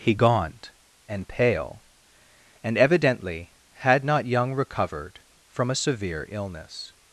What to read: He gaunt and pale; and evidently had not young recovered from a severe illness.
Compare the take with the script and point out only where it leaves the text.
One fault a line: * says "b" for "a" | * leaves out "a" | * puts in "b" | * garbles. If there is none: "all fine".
all fine